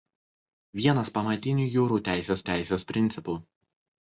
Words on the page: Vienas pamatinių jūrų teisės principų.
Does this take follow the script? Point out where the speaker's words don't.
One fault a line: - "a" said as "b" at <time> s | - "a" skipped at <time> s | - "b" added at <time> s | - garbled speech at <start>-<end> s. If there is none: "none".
- "teisės" added at 2.5 s